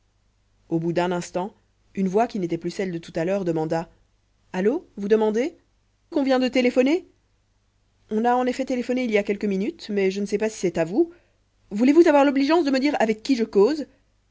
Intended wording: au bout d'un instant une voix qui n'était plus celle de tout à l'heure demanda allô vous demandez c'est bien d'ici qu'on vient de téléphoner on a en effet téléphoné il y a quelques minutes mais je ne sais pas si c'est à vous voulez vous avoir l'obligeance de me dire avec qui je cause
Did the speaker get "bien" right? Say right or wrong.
wrong